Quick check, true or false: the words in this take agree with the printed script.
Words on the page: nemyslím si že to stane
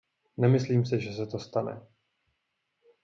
false